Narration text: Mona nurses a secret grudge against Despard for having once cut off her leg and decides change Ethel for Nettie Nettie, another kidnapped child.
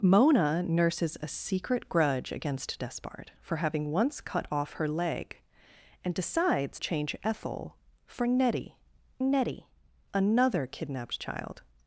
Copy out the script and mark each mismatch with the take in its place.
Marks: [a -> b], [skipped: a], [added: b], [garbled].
Mona nurses a secret grudge against Despard for having once cut off her leg and decides change Ethel for Nettie Nettie, another kidnapped child.